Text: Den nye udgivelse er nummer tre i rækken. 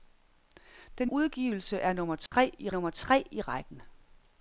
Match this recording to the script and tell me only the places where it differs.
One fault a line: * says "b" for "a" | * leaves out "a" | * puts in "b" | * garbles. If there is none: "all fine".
* leaves out "nye"
* puts in "nummer tre i"